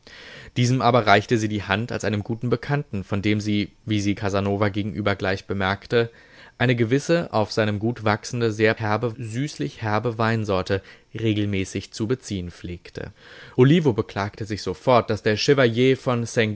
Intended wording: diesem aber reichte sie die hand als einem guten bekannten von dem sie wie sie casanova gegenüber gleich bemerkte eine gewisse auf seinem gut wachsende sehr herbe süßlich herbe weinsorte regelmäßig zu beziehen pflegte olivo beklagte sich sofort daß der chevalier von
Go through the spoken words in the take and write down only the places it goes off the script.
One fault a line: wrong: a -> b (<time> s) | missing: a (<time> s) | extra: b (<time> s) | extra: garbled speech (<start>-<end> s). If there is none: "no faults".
no faults